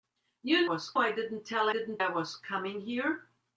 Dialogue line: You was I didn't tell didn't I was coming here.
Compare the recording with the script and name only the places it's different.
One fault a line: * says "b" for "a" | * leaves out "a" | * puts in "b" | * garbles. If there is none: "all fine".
all fine